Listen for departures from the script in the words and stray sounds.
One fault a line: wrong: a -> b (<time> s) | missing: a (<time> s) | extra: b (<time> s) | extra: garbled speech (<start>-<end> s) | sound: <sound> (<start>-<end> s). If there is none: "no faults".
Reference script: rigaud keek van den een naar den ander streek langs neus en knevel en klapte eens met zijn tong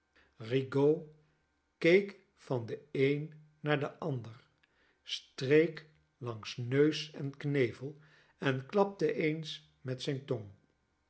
no faults